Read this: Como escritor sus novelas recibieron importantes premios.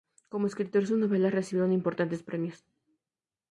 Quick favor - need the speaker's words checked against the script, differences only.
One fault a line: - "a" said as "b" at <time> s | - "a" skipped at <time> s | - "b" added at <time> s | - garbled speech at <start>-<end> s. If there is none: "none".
none